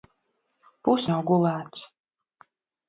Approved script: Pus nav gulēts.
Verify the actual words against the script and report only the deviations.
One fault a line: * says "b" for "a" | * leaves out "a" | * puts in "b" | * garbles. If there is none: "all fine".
all fine